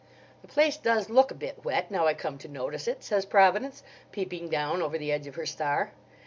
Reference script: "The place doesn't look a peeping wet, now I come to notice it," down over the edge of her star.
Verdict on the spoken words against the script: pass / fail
fail